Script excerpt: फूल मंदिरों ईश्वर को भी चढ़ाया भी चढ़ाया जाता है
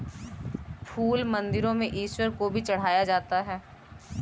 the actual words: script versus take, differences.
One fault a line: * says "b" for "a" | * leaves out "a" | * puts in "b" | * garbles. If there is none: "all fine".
* puts in "में"
* leaves out "भी चढ़ाया"